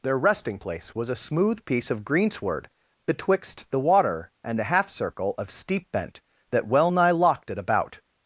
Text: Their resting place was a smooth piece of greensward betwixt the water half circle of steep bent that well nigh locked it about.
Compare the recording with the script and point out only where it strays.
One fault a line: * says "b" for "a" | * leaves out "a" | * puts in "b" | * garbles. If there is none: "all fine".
* puts in "and a"